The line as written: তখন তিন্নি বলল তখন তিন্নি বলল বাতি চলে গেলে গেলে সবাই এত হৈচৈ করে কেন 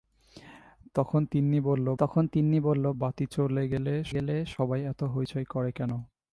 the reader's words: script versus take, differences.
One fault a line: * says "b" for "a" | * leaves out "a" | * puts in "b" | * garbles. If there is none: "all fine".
all fine